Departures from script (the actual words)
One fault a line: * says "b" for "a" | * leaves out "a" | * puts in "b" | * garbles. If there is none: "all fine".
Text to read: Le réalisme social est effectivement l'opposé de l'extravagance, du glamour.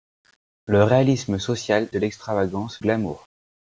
* leaves out "est effectivement l'opposé"
* leaves out "du"